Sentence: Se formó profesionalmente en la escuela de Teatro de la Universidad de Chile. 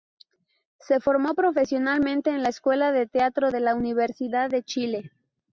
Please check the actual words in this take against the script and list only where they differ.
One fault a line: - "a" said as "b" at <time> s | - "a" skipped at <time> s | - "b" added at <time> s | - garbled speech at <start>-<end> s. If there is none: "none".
none